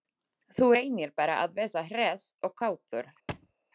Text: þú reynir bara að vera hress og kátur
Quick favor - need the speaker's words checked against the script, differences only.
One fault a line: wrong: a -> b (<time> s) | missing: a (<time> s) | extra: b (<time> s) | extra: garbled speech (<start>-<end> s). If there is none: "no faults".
no faults